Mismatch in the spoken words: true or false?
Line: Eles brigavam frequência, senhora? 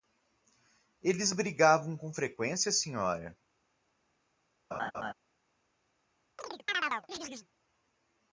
true